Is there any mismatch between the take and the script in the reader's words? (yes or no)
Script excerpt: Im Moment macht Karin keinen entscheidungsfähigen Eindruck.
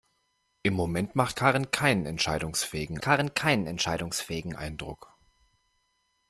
yes